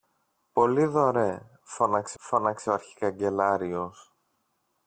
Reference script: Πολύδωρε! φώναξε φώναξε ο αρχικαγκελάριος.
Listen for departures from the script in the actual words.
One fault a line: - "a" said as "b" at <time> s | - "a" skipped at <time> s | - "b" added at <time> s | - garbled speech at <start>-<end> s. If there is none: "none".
none